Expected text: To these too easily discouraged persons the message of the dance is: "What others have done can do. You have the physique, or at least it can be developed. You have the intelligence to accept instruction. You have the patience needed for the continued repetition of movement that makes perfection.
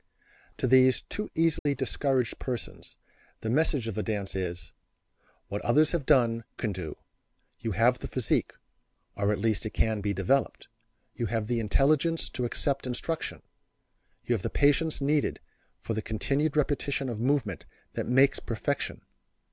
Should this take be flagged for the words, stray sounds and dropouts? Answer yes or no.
yes